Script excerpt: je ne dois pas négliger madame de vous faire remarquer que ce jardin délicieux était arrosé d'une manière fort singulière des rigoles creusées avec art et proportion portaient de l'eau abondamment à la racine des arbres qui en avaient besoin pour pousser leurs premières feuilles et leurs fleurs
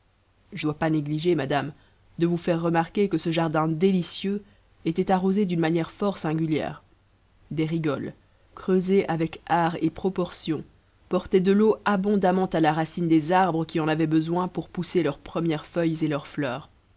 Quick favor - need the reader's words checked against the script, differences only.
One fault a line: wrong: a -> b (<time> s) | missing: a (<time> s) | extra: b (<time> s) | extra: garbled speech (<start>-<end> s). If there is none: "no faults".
missing: ne (0.7 s)